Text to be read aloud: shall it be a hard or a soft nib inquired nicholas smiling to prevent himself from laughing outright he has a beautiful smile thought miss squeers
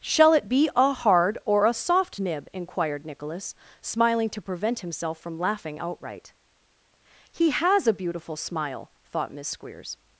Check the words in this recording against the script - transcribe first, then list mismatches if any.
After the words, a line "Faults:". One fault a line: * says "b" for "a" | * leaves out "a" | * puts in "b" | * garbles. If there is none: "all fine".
shall it be a hard or a soft nib inquired nicholas smiling to prevent himself from laughing outright he has a beautiful smile thought miss squeers
Faults:
all fine